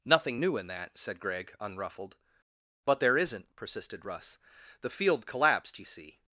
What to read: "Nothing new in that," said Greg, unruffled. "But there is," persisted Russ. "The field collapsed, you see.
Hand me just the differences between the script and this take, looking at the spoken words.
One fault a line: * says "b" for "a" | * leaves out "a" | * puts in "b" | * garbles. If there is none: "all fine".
* says "isn't" for "is"